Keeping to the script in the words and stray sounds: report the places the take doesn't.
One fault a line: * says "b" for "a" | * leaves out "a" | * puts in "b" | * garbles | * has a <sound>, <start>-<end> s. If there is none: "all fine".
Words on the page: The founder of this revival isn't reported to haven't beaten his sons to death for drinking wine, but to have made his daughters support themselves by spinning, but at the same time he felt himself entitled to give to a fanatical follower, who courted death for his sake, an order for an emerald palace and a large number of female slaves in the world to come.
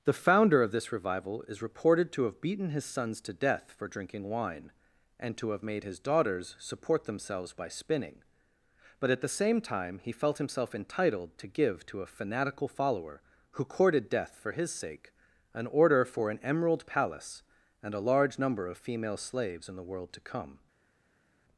* says "is" for "isn't"
* says "have" for "haven't"
* says "and" for "but"